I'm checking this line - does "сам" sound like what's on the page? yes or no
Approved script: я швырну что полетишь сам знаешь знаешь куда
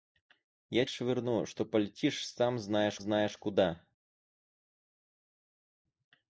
yes